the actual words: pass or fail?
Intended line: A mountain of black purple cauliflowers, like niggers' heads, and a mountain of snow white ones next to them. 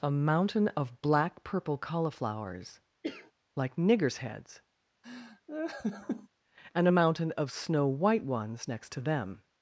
pass